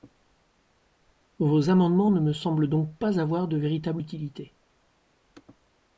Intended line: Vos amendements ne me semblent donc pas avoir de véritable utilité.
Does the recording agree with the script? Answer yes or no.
yes